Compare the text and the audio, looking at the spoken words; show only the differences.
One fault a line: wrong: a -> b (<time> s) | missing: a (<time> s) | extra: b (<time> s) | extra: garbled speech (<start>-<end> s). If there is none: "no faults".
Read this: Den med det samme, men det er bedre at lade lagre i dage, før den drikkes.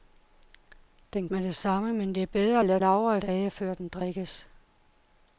no faults